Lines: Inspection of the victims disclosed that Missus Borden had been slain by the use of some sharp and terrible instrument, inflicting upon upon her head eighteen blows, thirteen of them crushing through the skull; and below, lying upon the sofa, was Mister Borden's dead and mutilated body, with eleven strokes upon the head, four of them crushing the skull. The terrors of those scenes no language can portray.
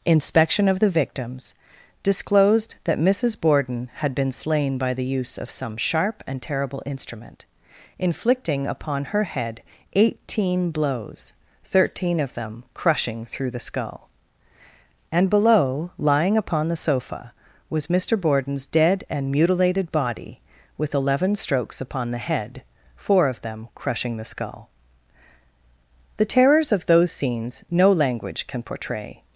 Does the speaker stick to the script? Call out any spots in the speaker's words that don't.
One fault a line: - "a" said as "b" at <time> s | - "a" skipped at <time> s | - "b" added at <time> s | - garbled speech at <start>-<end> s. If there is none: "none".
- "upon" skipped at 9.1 s